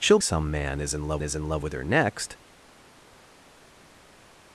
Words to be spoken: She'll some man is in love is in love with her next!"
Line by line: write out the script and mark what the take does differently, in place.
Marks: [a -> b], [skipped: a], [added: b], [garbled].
She'll some man is in love is in love with her next!"